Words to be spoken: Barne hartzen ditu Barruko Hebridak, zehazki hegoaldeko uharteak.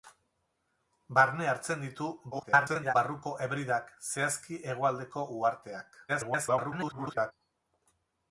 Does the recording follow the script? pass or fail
fail